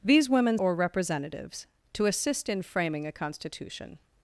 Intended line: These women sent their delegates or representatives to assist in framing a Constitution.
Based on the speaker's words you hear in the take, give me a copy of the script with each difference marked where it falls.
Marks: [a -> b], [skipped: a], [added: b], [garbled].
These women [skipped: sent their delegates] or representatives to assist in framing a Constitution.